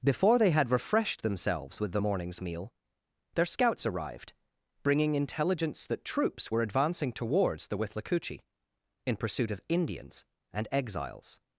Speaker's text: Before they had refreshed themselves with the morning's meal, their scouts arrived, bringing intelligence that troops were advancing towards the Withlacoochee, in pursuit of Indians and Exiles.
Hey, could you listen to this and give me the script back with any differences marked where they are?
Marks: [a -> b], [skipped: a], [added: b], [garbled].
Before they had refreshed themselves with the morning's meal, their scouts arrived, bringing intelligence that troops were advancing towards the Withlacoochee, in pursuit of Indians and Exiles.